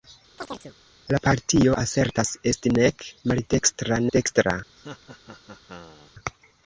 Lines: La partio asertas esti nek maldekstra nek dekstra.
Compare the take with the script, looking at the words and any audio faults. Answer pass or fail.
fail